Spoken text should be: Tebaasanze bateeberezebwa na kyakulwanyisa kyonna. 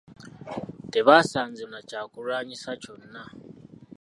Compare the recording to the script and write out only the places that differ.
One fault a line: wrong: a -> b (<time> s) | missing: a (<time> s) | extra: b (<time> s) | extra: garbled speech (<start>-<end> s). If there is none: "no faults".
missing: bateeberezebwa (1.6 s)